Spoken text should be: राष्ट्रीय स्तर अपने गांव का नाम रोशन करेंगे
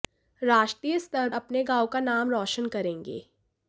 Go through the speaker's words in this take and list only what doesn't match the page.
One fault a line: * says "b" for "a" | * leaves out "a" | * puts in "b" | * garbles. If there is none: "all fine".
all fine